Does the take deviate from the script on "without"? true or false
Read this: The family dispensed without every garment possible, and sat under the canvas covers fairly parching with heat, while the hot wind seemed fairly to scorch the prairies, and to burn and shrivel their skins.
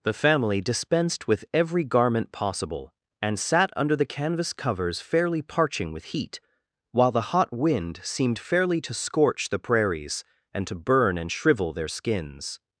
true